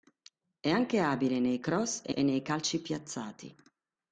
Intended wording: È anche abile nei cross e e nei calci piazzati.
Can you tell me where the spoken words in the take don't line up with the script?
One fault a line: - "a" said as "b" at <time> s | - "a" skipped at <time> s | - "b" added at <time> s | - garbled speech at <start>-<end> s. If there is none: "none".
none